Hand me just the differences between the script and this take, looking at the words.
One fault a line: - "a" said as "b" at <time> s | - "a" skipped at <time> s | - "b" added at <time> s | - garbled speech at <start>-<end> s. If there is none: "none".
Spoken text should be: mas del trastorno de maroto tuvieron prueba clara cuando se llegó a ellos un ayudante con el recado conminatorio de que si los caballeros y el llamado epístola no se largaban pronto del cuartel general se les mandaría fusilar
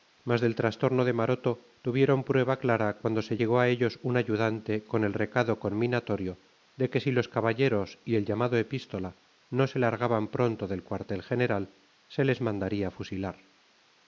none